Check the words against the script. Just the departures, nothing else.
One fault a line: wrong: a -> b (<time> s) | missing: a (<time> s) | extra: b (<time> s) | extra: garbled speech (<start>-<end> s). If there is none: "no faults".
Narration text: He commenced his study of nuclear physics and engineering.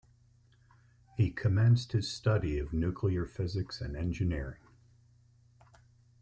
no faults